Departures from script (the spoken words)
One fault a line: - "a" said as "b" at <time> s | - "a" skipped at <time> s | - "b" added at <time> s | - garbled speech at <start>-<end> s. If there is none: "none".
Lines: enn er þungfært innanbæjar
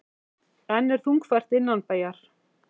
none